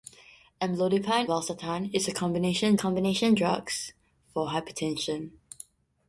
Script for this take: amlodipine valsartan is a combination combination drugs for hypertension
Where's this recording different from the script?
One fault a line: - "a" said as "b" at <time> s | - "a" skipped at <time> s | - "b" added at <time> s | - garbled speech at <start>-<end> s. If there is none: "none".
none